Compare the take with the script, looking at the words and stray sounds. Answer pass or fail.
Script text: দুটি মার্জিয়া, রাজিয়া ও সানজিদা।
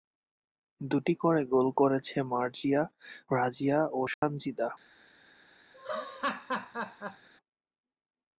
fail